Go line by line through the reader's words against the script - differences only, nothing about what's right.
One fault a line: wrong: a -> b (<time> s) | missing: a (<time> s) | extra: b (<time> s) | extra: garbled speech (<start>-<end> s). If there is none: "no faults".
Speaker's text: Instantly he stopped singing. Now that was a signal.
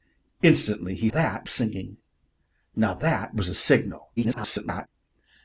wrong: stopped -> that (1.1 s)
extra: garbled speech (4.2-4.9 s)